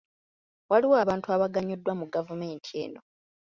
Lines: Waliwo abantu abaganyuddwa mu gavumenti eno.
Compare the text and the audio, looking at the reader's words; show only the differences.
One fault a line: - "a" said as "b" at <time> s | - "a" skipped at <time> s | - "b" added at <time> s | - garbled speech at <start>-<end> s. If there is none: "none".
none